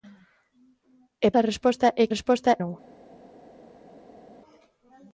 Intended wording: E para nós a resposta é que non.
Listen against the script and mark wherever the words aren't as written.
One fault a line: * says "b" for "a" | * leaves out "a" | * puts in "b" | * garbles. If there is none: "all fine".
* leaves out "para nós"
* says "resposta" for "que"